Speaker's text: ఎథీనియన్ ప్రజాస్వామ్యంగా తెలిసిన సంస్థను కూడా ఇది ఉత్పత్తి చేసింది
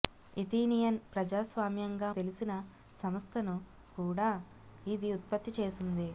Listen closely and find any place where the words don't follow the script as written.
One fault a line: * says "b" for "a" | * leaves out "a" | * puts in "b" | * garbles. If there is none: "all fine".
all fine